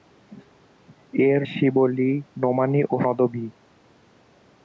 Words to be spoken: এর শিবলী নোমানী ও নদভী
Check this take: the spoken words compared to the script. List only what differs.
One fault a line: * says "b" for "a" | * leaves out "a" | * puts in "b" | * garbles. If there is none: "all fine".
all fine